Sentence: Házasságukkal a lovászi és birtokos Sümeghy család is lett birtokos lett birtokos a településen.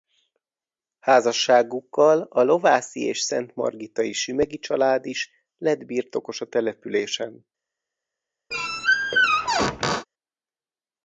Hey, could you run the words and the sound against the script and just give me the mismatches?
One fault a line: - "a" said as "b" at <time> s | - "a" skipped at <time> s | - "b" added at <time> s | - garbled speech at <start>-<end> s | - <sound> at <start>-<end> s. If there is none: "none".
- "birtokos" said as "szentmargitai" at 3.2 s
- "lett birtokos" skipped at 6.4 s
- squeak at 8.5-10.1 s